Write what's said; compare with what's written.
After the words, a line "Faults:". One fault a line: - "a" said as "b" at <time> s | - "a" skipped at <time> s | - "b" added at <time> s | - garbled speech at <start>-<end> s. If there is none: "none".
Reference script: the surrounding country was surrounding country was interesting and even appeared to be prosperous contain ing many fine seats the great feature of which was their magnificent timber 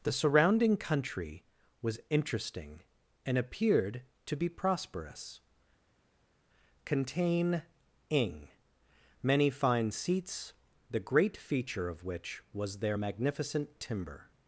the surrounding country was interesting and appeared to be prosperous contain ing many fine seats the great feature of which was their magnificent timber
Faults:
- "surrounding country was" skipped at 2.0 s
- "even" skipped at 3.4 s